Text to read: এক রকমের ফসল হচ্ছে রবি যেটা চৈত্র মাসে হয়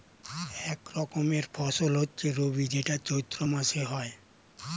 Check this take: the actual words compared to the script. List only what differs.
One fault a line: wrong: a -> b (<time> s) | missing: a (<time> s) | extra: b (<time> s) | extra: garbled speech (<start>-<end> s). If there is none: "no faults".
no faults